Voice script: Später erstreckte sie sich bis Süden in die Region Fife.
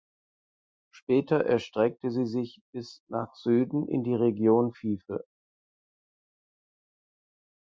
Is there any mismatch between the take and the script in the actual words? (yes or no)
yes